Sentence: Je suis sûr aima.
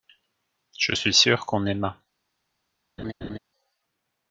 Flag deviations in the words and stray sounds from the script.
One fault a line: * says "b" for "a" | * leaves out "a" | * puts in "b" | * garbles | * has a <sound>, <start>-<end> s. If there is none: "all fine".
* puts in "qu'on"
* has a laugh, 3.0-3.4 s